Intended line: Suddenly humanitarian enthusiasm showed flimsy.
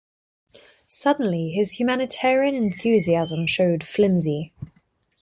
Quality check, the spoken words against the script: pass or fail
fail